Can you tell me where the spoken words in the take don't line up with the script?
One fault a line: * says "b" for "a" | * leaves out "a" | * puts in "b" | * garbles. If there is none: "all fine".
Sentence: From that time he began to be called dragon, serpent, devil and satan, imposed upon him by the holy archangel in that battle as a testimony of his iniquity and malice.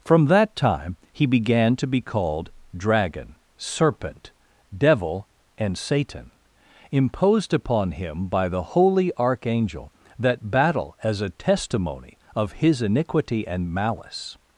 * leaves out "in"